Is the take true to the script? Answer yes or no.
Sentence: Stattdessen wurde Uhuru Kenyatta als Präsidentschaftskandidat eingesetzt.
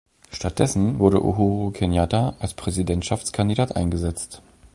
yes